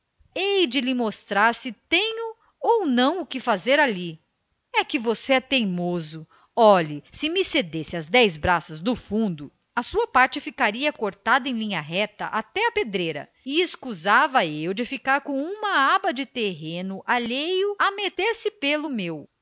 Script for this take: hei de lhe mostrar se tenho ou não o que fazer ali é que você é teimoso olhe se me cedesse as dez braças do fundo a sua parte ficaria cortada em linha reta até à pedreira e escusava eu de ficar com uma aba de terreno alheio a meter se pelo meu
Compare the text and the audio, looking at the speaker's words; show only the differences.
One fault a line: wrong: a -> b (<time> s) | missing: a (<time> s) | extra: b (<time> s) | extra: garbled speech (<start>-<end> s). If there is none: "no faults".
no faults